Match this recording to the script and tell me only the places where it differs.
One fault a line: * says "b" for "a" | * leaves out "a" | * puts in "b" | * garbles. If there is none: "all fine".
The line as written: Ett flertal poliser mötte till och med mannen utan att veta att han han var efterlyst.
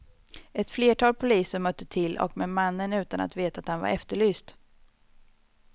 * leaves out "han"